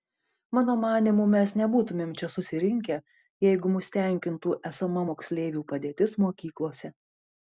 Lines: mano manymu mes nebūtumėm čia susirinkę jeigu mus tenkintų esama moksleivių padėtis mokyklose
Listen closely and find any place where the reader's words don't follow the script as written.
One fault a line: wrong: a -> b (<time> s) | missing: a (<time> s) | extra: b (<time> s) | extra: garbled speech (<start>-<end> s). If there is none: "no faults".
no faults